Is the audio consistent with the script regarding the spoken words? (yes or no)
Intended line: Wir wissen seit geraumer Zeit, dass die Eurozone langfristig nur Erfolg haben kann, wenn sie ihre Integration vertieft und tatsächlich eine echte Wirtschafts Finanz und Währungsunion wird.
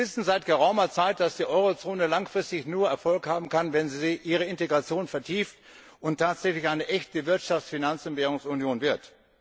yes